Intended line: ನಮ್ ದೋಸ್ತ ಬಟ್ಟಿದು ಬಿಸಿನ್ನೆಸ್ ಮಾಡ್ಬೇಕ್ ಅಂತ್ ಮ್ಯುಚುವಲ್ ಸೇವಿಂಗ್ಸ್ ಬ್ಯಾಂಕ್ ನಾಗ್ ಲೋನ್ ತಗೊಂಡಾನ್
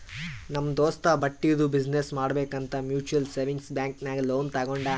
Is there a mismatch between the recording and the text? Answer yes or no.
no